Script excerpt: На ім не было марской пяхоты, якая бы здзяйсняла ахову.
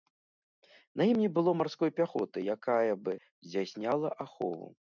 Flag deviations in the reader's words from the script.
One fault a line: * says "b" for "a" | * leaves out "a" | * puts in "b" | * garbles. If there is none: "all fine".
all fine